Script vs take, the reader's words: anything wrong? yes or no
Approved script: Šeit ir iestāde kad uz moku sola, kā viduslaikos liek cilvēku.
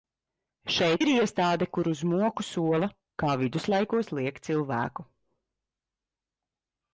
yes